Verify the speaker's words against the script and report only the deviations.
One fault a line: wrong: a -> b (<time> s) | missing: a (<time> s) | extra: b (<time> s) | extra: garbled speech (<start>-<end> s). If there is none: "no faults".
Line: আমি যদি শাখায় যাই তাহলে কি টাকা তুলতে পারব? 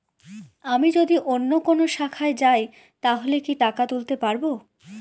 extra: অন্য কোনো (1.2 s)